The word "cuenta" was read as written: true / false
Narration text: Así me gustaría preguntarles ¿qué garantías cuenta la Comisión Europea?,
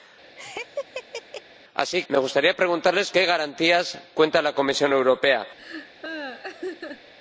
true